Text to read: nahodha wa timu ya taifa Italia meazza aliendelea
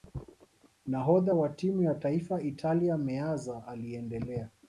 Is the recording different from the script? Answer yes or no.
no